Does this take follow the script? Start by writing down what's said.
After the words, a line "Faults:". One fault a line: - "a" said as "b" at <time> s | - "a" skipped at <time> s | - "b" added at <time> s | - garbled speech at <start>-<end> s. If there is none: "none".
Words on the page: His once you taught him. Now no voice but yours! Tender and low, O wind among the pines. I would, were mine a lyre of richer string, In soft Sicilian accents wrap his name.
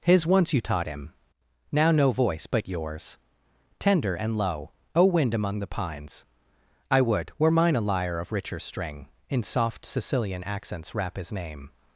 His once you taught him. Now no voice but yours! Tender and low, O wind among the pines. I would, were mine a lyre of richer string, In soft Sicilian accents wrap his name.
Faults:
none